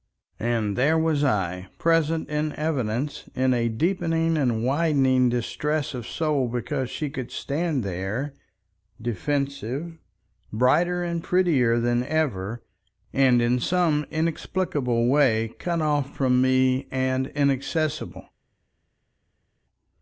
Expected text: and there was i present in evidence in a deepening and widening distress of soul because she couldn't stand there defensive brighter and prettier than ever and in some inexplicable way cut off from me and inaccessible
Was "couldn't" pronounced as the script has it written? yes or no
no